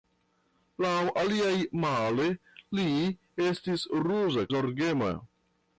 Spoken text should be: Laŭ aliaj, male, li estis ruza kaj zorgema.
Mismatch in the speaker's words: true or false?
true